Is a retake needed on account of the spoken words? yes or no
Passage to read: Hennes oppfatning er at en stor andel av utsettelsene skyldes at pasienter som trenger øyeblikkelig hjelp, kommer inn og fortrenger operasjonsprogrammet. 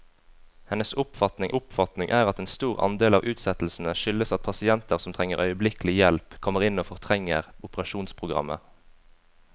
yes